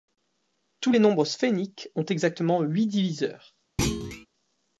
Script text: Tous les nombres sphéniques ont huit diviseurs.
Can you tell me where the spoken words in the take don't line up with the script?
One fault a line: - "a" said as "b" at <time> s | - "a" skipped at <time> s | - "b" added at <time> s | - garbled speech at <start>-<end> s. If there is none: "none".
- "exactement" added at 2.0 s